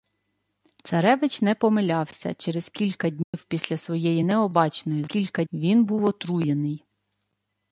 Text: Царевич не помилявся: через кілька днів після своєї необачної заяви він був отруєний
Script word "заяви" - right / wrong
wrong